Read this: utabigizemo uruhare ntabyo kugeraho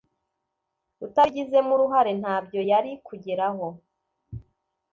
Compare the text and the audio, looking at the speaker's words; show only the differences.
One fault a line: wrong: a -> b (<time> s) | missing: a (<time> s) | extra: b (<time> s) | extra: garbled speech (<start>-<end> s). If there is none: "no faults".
extra: yari (2.7 s)